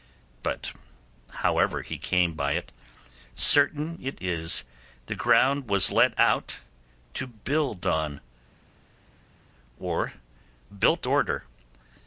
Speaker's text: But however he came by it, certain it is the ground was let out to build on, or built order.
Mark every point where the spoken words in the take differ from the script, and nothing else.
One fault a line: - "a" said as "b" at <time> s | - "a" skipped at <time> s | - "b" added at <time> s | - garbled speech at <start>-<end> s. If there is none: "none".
none